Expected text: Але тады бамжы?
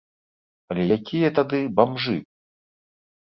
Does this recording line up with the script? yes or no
no